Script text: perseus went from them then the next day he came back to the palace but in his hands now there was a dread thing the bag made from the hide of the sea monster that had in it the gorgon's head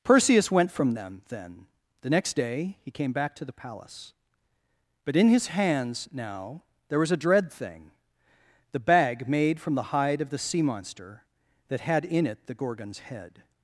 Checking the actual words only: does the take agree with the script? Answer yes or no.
yes